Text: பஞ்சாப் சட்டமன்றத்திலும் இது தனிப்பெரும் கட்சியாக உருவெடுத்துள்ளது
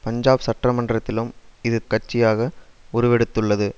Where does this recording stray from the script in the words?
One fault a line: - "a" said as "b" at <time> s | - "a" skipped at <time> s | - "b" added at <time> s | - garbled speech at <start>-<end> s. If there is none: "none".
- "தனிப்பெரும்" skipped at 1.8 s